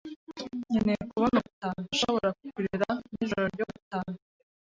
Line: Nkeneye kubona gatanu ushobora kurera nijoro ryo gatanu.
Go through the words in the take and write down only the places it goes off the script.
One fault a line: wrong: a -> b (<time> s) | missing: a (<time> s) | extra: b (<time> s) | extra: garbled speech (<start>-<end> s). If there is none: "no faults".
no faults